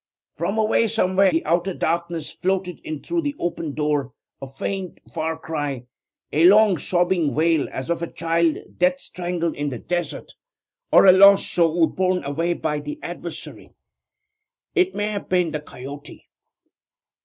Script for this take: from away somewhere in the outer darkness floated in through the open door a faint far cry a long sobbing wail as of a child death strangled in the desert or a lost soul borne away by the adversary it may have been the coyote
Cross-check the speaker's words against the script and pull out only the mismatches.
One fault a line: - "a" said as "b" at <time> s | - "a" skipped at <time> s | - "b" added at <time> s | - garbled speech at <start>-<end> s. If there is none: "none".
- "in" skipped at 1.3 s